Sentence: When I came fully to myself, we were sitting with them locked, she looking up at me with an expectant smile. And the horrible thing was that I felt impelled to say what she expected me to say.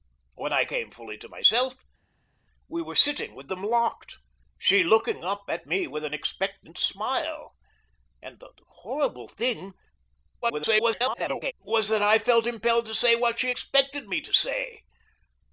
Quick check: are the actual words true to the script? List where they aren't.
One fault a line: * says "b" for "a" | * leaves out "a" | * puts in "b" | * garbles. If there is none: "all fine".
* garbles